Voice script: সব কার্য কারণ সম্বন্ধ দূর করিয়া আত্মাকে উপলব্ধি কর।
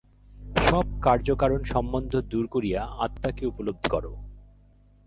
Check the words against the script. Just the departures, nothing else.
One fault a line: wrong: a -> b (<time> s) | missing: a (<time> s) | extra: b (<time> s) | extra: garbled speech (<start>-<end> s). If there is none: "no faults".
no faults